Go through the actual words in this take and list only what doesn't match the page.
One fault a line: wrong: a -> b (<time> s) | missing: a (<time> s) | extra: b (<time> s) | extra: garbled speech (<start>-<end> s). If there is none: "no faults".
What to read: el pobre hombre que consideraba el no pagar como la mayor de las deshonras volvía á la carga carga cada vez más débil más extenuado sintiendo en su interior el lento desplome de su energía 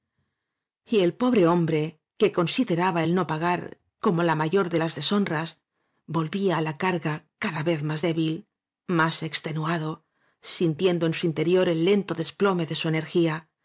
missing: carga (7.1 s)